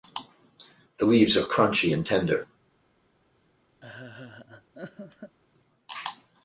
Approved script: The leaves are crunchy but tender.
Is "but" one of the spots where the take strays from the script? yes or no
yes